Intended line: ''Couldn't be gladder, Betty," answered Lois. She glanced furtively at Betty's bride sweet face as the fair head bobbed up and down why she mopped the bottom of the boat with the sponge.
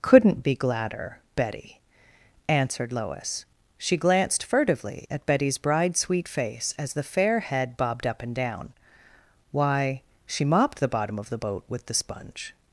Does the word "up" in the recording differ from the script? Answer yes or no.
no